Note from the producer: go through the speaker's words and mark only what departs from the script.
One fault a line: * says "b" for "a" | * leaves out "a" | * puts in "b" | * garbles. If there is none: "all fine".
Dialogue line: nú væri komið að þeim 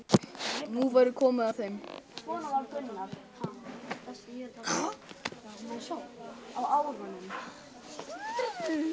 all fine